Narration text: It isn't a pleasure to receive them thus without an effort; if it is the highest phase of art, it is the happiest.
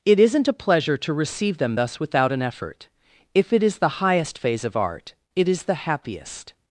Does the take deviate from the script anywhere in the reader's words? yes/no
no